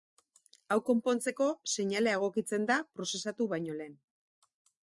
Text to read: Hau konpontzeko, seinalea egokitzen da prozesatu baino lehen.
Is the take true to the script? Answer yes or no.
yes